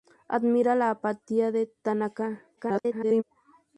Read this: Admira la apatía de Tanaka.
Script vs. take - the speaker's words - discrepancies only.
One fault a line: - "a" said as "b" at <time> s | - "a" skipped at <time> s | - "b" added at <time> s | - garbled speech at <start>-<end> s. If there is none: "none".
- garbled speech at 2.6-3.2 s